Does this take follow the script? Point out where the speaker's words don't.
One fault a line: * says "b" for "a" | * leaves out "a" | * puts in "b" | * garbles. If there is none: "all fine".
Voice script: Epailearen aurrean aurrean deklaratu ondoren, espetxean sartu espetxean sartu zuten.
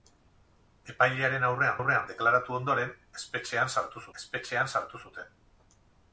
all fine